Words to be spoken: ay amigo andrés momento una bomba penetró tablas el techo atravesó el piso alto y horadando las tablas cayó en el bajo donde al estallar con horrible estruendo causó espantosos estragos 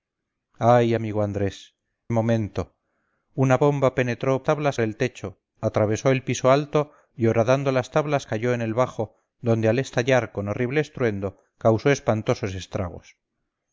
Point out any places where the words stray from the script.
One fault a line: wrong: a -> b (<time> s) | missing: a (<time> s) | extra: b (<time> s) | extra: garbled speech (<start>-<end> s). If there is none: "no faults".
no faults